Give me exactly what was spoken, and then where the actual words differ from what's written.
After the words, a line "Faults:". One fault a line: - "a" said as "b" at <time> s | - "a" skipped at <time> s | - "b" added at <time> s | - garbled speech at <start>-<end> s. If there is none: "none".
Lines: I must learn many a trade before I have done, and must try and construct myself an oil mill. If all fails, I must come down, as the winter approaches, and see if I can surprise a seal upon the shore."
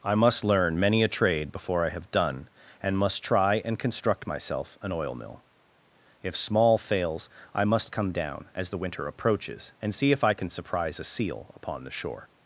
I must learn many a trade before I have done, and must try and construct myself an oil mill. If small fails, I must come down, as the winter approaches, and see if I can surprise a seal upon the shore."
Faults:
- "all" said as "small" at 6.3 s